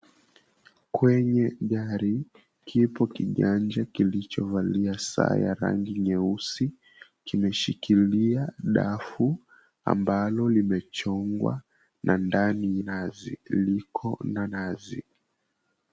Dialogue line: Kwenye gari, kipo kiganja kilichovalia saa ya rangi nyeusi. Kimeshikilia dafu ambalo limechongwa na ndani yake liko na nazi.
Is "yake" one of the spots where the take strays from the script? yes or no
yes